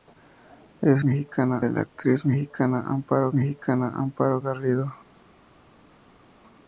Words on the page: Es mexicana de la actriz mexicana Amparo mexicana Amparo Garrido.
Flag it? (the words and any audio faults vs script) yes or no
no